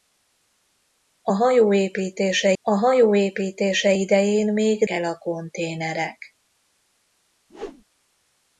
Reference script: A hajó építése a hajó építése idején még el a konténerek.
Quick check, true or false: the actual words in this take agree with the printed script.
true